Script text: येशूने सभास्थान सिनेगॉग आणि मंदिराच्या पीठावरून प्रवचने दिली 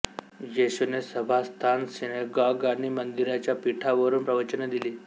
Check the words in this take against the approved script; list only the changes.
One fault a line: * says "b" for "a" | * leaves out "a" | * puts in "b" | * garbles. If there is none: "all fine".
all fine